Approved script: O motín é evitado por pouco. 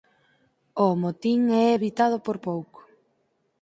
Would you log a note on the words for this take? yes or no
no